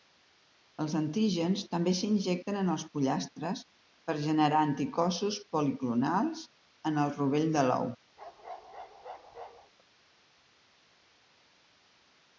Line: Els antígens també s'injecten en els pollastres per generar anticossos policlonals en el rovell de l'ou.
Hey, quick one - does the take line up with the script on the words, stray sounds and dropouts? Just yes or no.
no